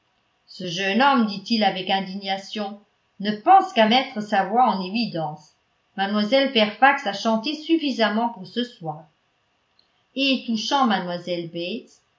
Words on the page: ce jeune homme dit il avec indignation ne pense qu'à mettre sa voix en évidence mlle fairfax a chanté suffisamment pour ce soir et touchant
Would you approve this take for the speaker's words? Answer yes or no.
yes